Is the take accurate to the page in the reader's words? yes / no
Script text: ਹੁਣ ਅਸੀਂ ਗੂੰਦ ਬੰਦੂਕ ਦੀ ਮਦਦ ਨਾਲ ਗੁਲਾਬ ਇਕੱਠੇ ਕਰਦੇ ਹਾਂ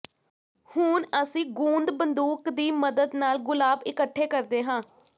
yes